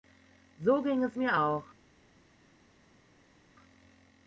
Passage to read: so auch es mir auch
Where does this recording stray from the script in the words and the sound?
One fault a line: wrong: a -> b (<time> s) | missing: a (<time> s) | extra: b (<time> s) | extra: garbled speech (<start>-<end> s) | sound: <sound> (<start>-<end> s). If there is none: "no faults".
wrong: auch -> ging (0.8 s)